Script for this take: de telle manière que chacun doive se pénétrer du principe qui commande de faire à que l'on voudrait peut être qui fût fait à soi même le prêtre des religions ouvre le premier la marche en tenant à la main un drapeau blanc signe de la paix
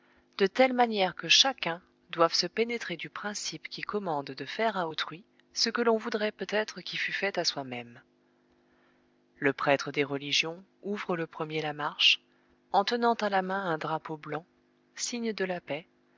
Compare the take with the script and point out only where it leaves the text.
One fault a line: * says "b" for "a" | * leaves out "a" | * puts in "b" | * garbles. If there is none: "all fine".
* puts in "autrui ce"